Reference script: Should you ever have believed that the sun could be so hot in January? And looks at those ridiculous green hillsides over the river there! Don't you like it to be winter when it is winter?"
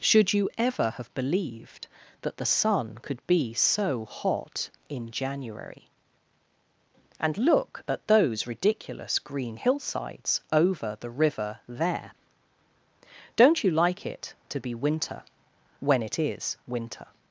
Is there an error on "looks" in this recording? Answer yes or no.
yes